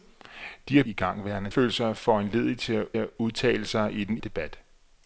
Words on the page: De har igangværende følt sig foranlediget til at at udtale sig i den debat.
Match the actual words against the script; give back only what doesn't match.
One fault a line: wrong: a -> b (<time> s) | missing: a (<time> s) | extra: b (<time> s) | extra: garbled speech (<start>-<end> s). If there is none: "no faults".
no faults